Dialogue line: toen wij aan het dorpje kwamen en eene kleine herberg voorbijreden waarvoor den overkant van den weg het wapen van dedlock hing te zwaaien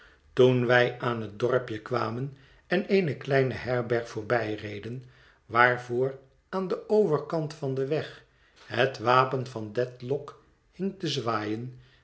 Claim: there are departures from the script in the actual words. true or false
true